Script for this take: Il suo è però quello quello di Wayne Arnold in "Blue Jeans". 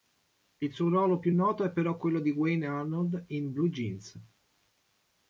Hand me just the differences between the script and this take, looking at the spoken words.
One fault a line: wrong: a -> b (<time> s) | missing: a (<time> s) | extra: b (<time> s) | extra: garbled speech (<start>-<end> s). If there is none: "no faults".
extra: ruolo più noto (0.9 s)
missing: quello (2.2 s)